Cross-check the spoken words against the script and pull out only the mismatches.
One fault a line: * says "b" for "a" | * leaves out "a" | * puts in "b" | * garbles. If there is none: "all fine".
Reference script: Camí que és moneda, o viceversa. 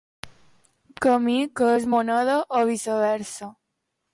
all fine